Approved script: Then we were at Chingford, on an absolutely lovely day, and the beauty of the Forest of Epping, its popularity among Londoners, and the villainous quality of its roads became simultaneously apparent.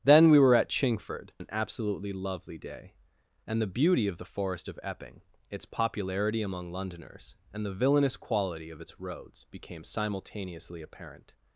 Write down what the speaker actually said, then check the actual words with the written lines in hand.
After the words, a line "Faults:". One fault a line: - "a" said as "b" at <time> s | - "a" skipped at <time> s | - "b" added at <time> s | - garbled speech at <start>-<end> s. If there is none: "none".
Then we were at Chingford, an absolutely lovely day, and the beauty of the Forest of Epping, its popularity among Londoners, and the villainous quality of its roads became simultaneously apparent.
Faults:
- "on" skipped at 1.3 s